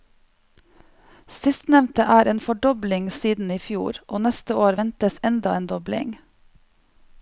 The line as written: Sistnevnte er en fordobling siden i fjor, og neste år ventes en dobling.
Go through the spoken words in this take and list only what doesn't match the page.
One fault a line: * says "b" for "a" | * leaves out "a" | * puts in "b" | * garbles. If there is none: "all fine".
* puts in "enda"